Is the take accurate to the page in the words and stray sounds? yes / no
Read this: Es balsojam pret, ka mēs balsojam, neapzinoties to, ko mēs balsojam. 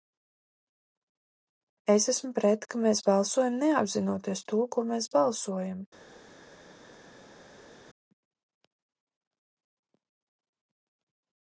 no